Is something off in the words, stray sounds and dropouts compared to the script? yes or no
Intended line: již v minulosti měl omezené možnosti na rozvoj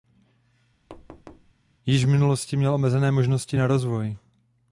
yes